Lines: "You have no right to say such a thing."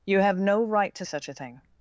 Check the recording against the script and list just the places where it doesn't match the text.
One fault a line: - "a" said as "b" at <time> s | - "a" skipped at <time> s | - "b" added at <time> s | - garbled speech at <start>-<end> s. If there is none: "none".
- "say" skipped at 1.1 s